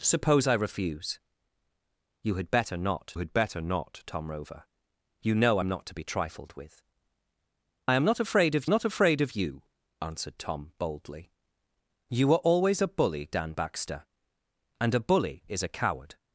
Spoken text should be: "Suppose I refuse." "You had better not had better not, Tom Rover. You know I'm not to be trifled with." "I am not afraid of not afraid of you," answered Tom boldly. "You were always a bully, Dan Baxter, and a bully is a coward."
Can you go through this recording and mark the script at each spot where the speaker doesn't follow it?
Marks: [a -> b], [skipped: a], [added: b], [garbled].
"Suppose I refuse." "You had better not had better not, Tom Rover. You know I'm not to be trifled with." "I am not afraid of not afraid of you," answered Tom boldly. "You were always a bully, Dan Baxter, and a bully is a coward."